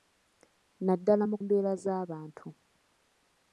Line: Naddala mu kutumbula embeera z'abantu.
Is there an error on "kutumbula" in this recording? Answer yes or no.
yes